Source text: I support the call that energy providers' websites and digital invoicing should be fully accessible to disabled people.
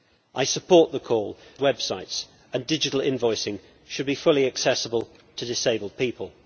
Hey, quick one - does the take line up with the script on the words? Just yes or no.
no